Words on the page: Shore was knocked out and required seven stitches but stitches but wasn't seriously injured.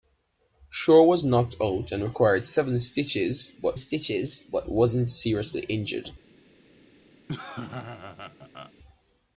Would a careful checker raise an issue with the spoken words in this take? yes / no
no